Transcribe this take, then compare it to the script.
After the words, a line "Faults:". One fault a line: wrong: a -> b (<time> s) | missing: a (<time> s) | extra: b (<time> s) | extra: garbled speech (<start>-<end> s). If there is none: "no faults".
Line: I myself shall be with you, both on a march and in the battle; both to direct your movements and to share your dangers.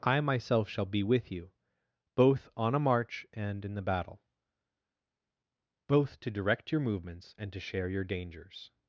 I myself shall be with you, both on a march and in the battle; both to direct your movements and to share your dangers.
Faults:
no faults